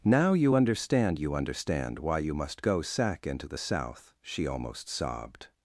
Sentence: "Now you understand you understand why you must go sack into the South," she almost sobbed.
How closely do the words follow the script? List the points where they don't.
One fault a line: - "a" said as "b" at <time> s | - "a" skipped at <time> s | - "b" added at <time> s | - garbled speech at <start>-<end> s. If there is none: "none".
none